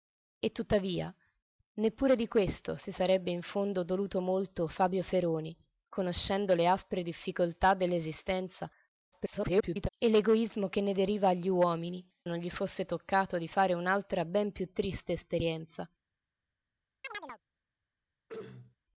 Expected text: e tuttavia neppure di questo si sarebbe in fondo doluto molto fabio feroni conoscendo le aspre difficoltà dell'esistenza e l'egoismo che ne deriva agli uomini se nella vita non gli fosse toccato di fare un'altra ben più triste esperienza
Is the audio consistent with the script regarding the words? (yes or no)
no